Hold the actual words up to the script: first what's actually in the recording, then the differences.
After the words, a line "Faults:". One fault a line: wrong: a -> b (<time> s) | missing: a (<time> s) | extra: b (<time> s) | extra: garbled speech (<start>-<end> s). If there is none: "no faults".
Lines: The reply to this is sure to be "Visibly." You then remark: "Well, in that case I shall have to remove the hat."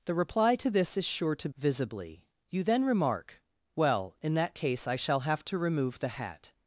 The reply to this is sure to "Visibly." You then remark: "Well, in that case I shall have to remove the hat."
Faults:
missing: be (1.5 s)